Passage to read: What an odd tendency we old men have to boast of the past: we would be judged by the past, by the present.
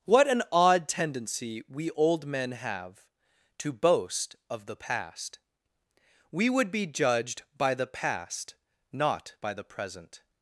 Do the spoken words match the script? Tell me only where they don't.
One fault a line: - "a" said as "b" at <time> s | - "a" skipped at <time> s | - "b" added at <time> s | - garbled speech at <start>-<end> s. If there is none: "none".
- "not" added at 8.9 s